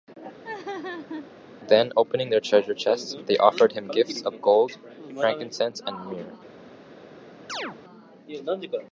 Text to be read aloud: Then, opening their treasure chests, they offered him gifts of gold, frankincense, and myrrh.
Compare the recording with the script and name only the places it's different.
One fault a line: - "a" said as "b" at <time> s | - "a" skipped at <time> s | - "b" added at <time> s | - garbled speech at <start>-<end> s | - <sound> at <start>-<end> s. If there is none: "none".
- laugh at 0.4-1.3 s
- chirp at 7.5-7.8 s